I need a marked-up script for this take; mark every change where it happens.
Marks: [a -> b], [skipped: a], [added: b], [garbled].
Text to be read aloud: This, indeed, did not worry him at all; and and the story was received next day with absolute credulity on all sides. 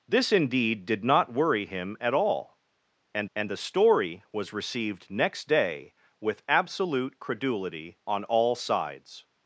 This, indeed, did not worry him at all; and and the story was received next day with absolute credulity on all sides.